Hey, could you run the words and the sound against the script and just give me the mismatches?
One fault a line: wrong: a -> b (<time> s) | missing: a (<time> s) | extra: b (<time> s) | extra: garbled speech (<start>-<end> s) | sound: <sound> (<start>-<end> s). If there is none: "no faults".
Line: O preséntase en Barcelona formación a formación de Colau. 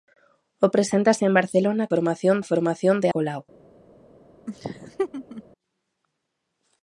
sound: laugh (4.5-5.4 s)